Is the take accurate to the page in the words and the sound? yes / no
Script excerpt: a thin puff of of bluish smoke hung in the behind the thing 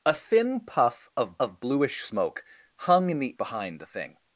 yes